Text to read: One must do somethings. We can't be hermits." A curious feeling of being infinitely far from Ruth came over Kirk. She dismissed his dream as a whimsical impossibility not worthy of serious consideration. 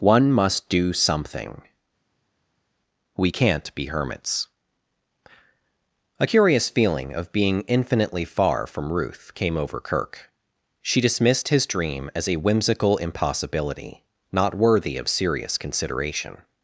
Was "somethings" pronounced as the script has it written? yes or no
no